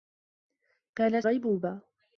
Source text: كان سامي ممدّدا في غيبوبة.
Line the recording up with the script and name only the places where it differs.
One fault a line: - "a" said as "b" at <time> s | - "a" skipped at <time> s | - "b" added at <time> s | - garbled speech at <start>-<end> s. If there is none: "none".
- "سامي ممدّدا في" skipped at 1.2 s